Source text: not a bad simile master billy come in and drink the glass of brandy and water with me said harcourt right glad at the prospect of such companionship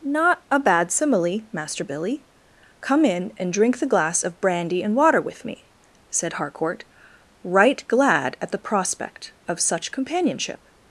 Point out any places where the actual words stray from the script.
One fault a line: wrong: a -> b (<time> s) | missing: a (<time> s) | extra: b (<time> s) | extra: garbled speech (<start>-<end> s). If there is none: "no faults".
no faults